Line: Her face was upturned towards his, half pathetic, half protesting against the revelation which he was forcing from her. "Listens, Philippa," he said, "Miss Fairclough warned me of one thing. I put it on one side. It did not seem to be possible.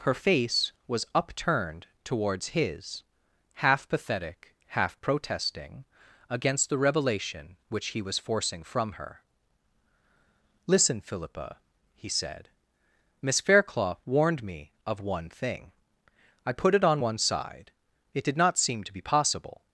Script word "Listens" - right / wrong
wrong